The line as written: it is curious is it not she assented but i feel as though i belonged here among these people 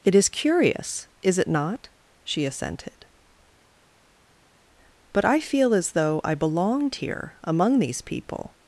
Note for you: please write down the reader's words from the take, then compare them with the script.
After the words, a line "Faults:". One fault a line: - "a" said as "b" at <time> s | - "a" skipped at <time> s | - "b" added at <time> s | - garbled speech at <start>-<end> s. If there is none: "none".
it is curious is it not she assented but i feel as though i belonged here among these people
Faults:
none